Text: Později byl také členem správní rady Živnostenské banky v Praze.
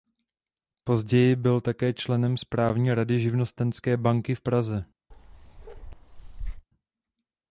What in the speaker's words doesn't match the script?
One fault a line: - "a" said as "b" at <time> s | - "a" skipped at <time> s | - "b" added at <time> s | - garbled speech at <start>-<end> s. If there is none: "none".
none